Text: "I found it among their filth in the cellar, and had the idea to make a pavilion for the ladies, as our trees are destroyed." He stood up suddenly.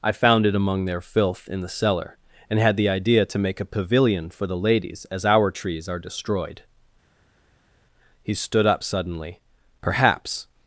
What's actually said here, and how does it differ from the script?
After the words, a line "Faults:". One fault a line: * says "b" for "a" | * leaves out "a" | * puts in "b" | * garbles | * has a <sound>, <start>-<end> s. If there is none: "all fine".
"I found it among their filth in the cellar, and had the idea to make a pavilion for the ladies, as our trees are destroyed." He stood up suddenly. "Perhaps
Faults:
* puts in "Perhaps"